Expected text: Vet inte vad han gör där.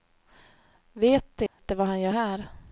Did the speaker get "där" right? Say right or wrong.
wrong